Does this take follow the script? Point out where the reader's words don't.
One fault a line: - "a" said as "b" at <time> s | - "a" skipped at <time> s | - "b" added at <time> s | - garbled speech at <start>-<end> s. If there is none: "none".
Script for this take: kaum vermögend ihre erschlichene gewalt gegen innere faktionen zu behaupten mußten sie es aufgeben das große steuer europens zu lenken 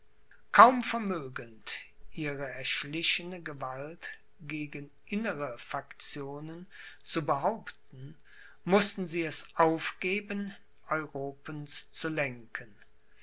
- "das große steuer" skipped at 10.6 s